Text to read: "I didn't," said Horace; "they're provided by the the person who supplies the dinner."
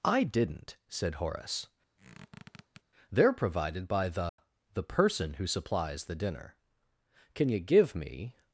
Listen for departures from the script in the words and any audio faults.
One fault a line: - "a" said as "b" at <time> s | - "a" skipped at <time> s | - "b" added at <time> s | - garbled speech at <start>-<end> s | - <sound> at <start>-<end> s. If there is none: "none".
- squeak at 2.0-2.8 s
- dropout at 4.3-4.4 s
- "Can you give me" added at 7.3 s